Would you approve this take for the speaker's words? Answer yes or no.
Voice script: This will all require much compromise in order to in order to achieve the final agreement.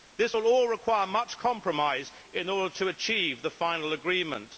no